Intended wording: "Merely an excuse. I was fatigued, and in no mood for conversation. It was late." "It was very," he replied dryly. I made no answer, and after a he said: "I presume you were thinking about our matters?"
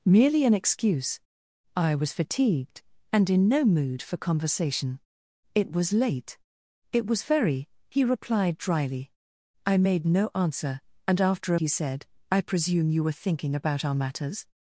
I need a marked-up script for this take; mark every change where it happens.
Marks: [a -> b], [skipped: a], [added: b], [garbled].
"Merely an excuse. I was fatigued, and in no mood for conversation. It was late." "It was very," he replied dryly. I made no answer, and after a he said: "I presume you were thinking about our matters?"